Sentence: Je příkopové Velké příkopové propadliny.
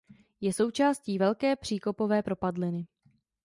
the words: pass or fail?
fail